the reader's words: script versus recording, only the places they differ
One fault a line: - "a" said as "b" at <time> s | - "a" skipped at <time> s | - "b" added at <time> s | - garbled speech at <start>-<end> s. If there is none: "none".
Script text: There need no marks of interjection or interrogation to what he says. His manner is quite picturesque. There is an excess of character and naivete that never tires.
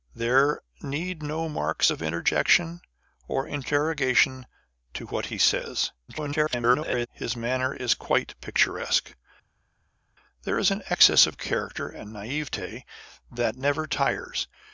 - garbled speech at 6.1-7.1 s